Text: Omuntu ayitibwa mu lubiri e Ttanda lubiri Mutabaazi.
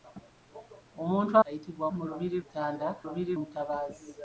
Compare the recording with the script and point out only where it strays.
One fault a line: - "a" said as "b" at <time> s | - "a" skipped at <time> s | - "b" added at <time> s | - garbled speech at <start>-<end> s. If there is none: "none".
none